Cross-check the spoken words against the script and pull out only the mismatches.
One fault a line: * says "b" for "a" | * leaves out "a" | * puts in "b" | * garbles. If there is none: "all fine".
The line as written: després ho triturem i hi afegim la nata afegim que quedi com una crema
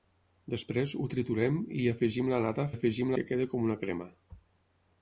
all fine